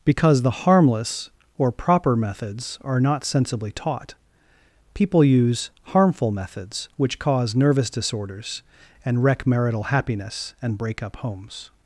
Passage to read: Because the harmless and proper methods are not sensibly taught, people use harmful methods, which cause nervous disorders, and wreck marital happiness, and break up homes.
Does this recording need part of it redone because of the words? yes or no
yes